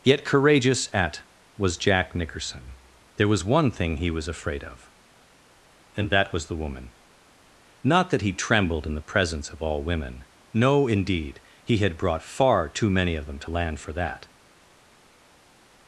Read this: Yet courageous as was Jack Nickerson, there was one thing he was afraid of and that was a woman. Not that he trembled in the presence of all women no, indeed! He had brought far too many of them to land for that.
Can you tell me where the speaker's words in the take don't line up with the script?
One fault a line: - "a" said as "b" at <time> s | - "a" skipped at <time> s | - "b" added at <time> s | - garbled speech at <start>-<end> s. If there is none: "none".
- "as" said as "at" at 0.9 s
- "a" said as "the" at 6.5 s